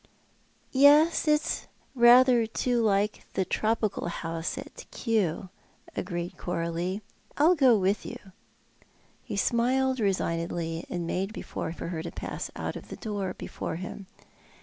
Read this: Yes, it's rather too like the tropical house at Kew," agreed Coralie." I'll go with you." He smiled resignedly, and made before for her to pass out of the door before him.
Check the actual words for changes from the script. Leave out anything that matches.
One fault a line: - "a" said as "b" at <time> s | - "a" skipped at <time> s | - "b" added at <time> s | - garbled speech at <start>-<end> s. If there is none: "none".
none